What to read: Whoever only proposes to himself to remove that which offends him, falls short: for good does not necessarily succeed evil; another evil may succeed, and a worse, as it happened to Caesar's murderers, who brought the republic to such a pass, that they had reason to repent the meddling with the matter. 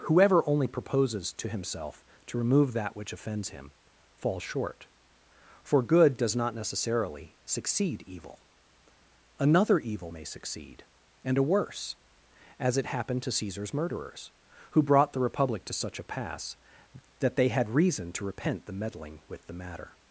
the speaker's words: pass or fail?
pass